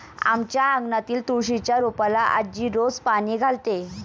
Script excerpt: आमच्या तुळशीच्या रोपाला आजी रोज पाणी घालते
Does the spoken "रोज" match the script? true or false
true